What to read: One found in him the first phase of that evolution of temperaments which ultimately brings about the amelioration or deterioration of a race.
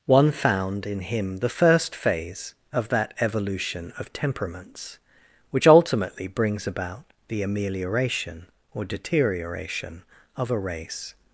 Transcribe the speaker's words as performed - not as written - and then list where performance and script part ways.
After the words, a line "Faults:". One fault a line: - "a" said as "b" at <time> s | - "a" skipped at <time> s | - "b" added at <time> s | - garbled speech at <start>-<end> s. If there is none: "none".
One found in him the first phase of that evolution of temperaments which ultimately brings about the amelioration or deterioration of a race.
Faults:
none